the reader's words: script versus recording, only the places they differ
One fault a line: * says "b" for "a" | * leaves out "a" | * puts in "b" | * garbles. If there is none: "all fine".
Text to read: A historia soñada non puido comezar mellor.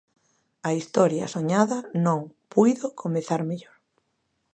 all fine